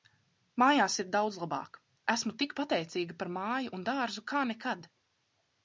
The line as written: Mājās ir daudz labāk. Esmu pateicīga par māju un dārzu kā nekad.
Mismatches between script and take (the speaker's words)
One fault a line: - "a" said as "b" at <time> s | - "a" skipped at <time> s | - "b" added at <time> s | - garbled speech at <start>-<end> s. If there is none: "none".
- "tik" added at 2.4 s